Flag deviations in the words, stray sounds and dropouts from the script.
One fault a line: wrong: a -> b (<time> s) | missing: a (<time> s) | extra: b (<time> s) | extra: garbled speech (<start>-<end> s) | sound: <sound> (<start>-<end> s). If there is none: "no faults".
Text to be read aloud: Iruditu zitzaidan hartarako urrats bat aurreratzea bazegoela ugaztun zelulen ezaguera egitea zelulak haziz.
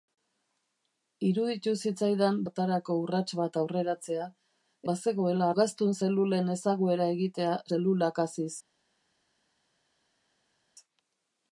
no faults